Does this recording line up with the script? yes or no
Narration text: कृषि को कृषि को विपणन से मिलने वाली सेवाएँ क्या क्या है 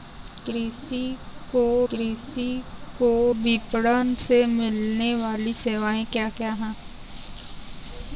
yes